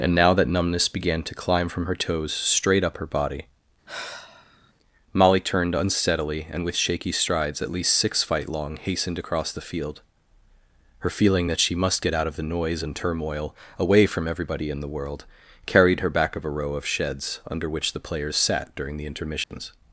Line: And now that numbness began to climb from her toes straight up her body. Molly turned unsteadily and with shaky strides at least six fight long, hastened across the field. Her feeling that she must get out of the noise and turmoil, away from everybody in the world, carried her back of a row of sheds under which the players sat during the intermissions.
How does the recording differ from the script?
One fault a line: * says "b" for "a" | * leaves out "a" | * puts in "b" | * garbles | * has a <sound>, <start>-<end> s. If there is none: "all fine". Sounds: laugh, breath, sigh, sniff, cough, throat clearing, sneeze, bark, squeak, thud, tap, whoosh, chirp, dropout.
* has a sigh, 3.9-4.7 s
* has a dropout, 19.4-19.5 s